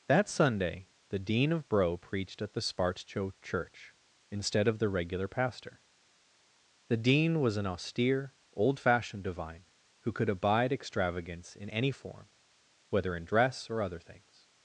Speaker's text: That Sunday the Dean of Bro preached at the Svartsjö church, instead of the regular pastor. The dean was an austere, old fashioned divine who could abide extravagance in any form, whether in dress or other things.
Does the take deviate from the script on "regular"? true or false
false